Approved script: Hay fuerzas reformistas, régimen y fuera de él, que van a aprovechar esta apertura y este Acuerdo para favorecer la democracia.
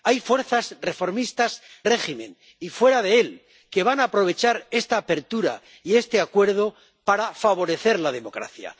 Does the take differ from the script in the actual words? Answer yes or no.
no